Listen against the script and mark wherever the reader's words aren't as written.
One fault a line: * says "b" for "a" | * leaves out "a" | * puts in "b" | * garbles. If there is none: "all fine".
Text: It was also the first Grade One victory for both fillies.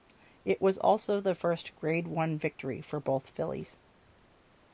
all fine